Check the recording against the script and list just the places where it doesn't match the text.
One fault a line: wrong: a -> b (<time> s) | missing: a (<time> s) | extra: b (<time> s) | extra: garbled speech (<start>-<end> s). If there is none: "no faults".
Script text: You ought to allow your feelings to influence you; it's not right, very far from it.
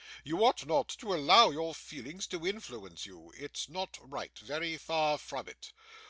extra: not (0.7 s)